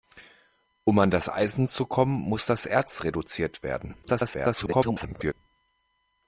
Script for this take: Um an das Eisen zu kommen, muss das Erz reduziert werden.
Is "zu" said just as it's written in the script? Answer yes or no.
yes